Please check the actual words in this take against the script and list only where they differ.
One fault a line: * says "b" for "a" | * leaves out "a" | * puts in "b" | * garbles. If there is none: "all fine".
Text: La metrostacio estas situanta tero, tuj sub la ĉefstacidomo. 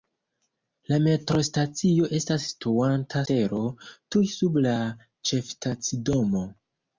all fine